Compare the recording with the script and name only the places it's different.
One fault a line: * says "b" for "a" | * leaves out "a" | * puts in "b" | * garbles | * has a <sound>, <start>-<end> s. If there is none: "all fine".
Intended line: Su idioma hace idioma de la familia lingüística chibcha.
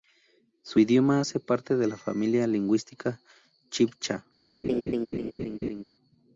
* says "parte" for "idioma"
* has a laugh, 4.6-5.8 s